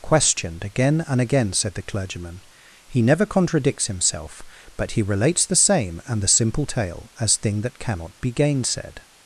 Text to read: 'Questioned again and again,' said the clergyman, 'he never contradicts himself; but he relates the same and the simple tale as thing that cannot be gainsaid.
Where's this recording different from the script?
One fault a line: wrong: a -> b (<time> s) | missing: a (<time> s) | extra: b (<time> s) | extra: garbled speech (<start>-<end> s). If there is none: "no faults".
no faults